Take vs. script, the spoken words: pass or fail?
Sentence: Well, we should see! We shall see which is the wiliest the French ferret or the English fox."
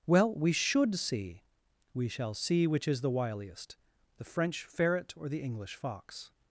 pass